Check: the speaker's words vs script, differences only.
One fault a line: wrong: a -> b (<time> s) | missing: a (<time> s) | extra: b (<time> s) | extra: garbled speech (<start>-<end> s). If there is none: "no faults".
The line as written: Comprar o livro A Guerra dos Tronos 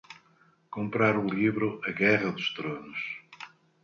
no faults